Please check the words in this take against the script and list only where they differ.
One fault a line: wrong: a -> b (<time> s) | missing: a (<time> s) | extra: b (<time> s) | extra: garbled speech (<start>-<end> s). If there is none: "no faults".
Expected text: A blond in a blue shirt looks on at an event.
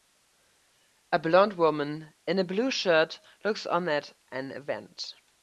extra: woman (1.5 s)